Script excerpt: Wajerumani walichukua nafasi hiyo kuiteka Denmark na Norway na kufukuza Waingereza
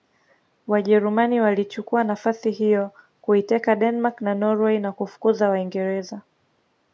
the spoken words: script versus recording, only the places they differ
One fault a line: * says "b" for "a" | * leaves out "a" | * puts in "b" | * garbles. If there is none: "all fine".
all fine